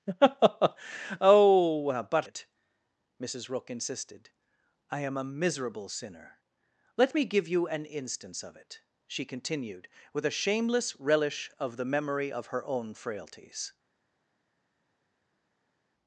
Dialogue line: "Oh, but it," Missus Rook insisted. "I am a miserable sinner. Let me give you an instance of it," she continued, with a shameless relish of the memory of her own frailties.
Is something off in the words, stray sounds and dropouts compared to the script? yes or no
no